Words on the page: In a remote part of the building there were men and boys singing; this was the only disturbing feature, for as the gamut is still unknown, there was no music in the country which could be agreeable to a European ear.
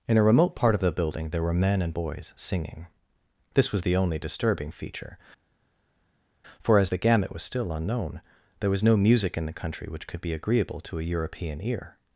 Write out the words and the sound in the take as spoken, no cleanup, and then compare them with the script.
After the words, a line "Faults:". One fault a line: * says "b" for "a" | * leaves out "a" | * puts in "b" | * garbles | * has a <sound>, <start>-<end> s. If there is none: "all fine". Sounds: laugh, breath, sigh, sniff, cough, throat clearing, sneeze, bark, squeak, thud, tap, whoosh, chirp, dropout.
In a remote part of the building there were men and boys singing; this was the only disturbing feature, for as the gamut was still unknown, there was no music in the country which could be agreeable to a European ear.
Faults:
* says "was" for "is"